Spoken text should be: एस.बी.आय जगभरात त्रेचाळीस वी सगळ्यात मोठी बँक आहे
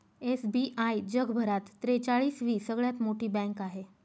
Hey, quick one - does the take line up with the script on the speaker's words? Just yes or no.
yes